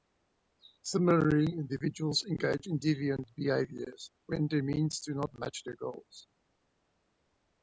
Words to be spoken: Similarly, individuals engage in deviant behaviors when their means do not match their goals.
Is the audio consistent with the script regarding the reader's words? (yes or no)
yes